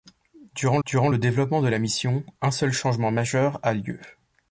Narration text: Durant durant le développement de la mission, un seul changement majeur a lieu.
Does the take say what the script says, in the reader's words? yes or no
yes